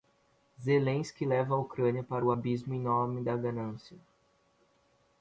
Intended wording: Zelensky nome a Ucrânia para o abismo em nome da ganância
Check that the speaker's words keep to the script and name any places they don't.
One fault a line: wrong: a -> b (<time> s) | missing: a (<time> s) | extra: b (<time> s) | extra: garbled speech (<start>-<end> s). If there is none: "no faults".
wrong: nome -> leva (1.3 s)